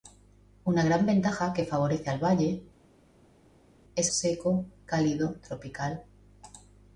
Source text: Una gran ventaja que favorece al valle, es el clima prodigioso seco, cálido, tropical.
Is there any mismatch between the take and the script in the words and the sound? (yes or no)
yes